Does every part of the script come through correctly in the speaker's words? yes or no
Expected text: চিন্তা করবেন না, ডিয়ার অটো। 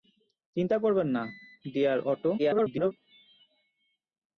no